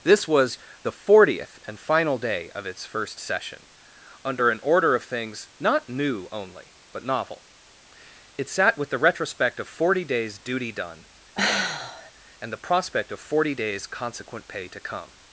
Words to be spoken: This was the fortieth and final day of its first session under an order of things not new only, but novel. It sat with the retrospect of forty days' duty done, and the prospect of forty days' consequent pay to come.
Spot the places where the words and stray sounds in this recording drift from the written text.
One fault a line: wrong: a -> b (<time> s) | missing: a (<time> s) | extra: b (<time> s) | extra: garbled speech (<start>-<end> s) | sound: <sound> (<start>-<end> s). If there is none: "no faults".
sound: sigh (11.3-12.1 s)